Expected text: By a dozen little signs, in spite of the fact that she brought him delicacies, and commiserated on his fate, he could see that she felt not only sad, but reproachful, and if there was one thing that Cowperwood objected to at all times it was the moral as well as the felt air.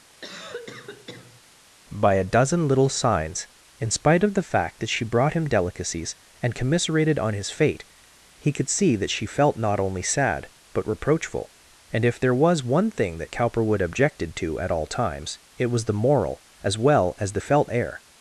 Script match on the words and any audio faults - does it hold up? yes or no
no